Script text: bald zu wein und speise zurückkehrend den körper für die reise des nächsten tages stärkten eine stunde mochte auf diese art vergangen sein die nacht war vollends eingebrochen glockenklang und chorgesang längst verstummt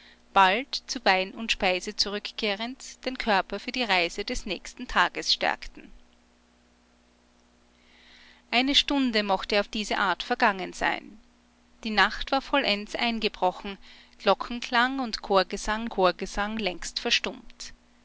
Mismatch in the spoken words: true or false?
true